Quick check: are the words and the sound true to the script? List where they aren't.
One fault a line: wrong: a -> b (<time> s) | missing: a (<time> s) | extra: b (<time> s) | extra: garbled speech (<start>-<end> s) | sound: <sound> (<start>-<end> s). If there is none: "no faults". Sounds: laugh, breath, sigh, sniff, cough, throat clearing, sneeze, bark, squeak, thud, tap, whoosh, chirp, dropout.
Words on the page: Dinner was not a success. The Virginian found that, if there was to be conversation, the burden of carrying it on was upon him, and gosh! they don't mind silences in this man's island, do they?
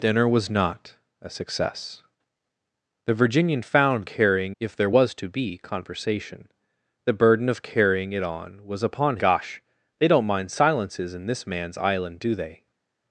wrong: that -> carrying (4.0 s)
missing: him and (9.2 s)